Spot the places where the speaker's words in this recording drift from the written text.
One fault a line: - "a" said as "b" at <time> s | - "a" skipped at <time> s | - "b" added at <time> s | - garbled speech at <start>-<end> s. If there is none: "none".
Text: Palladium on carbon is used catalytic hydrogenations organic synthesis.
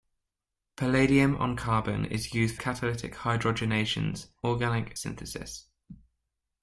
none